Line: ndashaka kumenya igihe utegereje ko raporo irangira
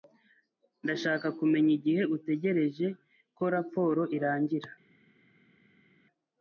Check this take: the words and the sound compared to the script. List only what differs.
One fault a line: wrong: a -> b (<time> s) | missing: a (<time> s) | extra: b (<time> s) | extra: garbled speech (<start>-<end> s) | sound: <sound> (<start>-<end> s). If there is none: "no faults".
no faults